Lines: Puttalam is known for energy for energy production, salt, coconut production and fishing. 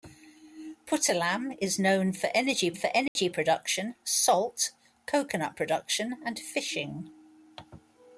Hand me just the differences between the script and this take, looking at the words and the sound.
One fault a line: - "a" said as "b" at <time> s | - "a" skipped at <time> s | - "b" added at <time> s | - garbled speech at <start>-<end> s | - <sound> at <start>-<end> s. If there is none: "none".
- dropout at 3.1-3.2 s